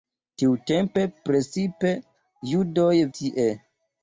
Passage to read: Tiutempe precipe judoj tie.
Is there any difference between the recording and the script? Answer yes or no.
no